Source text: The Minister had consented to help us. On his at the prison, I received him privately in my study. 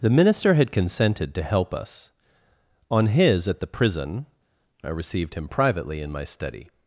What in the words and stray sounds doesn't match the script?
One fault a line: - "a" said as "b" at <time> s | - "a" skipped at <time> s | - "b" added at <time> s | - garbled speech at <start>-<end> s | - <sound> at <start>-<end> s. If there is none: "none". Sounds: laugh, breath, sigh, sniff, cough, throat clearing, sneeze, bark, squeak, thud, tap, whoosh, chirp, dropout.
none